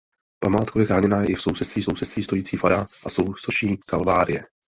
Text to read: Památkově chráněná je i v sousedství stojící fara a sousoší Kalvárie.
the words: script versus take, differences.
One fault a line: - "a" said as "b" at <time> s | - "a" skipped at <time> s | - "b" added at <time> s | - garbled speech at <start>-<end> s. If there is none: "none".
- "sousedství" added at 1.8 s